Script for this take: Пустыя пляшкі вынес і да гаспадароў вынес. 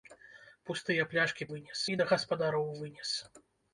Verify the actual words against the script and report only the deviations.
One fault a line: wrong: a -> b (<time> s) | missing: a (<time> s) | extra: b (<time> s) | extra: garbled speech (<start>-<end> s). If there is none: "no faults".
no faults